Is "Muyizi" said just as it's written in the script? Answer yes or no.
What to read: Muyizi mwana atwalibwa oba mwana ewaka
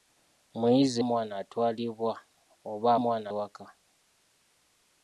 yes